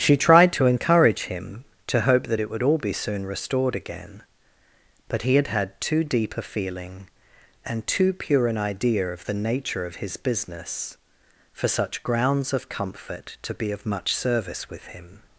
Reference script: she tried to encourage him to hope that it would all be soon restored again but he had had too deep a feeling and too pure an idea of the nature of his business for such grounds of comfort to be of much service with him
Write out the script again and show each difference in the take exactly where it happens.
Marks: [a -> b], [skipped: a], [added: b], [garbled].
she tried to encourage him to hope that it would all be soon restored again but he had had too deep a feeling and too pure an idea of the nature of his business for such grounds of comfort to be of much service with him